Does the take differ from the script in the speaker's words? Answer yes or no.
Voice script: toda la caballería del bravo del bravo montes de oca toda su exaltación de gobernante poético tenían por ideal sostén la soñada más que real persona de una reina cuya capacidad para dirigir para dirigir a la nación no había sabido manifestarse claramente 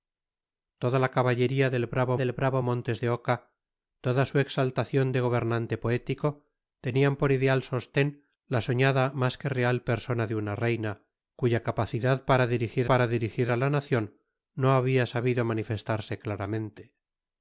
no